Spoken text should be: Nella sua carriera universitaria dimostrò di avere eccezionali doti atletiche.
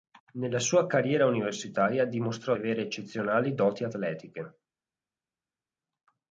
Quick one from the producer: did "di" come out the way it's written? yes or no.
no